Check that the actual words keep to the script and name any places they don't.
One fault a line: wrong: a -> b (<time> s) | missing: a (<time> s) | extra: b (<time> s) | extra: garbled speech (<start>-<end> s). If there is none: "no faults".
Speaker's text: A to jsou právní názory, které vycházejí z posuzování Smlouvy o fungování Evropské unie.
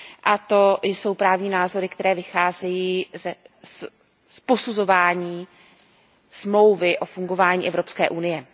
no faults